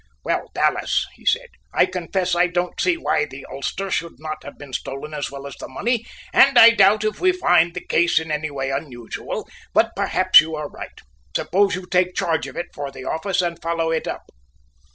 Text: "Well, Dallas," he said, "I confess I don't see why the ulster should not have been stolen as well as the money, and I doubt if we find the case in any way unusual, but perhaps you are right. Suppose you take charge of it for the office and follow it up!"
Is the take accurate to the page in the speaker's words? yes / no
yes